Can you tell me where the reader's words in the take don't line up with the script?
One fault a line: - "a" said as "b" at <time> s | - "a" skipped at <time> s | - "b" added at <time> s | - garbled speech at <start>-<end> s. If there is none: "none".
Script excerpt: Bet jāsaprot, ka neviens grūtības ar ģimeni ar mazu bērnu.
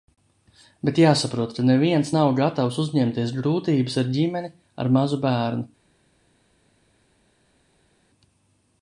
- "nav gatavs uzņemties" added at 2.2 s